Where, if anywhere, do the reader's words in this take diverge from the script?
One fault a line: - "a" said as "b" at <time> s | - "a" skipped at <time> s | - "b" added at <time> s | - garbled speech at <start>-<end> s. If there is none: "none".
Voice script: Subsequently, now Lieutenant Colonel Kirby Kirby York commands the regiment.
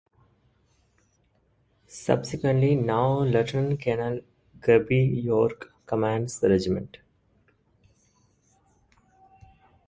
- "Kirby" skipped at 5.0 s